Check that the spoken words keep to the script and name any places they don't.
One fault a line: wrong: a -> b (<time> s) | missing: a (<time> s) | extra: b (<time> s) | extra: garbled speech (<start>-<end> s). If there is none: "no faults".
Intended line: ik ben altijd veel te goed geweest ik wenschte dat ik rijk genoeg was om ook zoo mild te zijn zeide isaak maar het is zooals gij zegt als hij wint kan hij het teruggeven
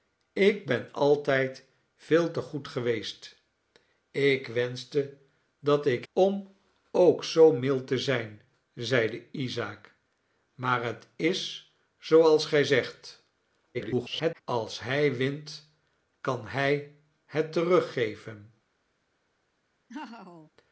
missing: rijk genoeg was (6.0 s)
extra: garbled speech (13.7-14.4 s)